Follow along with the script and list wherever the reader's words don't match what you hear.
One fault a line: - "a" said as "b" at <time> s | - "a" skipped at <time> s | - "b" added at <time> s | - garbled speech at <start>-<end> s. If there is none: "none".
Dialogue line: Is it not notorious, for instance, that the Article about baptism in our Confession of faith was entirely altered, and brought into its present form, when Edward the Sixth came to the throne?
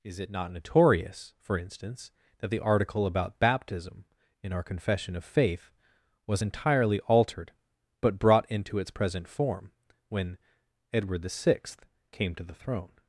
- "and" said as "but" at 8.0 s